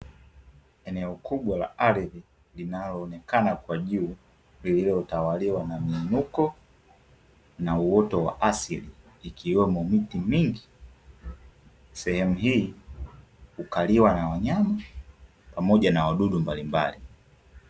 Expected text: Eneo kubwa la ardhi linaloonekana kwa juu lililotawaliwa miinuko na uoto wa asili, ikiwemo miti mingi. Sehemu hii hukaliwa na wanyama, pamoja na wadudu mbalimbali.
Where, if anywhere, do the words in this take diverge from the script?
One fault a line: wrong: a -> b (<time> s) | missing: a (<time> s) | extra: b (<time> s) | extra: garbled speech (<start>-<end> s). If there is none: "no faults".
extra: na (5.6 s)